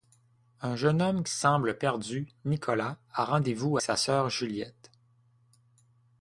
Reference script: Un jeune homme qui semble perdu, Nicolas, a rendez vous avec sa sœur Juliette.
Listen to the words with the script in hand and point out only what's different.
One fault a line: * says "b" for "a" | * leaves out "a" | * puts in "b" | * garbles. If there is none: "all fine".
* leaves out "avec"